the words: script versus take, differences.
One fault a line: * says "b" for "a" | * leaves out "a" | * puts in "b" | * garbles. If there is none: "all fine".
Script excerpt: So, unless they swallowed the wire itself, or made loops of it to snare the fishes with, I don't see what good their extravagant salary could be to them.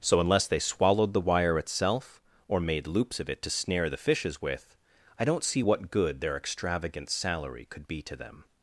all fine